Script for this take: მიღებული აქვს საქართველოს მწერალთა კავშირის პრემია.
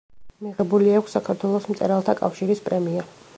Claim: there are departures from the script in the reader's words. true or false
false